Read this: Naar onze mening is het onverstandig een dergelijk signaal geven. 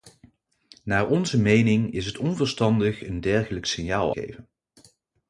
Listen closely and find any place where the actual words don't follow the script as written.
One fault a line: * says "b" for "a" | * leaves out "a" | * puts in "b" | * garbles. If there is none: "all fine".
all fine